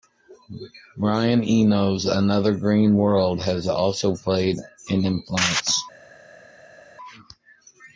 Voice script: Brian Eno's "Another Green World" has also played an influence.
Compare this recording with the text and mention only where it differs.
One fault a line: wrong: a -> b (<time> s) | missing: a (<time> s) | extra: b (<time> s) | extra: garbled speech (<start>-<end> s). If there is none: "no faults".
no faults